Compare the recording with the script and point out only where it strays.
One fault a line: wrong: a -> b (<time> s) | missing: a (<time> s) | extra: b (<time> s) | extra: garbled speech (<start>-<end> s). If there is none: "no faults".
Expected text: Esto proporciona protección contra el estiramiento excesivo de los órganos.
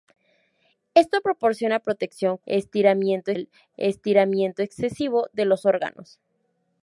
wrong: contra -> estiramiento (2.4 s)